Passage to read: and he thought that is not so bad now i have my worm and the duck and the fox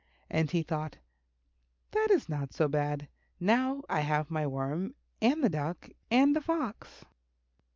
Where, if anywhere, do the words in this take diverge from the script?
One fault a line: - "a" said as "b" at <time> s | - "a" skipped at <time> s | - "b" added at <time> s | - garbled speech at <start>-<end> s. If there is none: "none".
none